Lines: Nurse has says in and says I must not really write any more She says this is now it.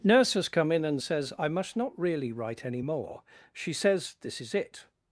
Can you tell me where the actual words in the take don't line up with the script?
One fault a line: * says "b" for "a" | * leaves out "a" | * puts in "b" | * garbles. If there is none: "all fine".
* says "come" for "says"
* leaves out "now"